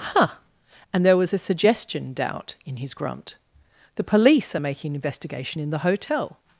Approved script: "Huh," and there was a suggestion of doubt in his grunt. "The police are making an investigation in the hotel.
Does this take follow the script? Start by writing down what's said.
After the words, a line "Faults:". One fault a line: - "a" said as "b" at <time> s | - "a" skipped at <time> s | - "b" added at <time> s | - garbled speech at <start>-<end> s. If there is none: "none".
"Huh," and there was a suggestion doubt in his grunt. "The police are making an investigation in the hotel.
Faults:
- "of" skipped at 2.1 s